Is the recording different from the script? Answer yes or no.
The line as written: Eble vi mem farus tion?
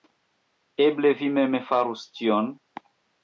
no